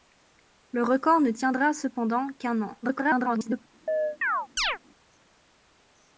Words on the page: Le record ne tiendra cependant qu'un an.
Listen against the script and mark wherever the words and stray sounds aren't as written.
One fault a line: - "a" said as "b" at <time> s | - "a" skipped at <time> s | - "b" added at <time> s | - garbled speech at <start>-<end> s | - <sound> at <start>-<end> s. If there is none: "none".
- garbled speech at 2.8-3.7 s
- chirp at 3.9-4.8 s